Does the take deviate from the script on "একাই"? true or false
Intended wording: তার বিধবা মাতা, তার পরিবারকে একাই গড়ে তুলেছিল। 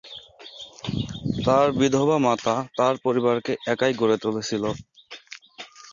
false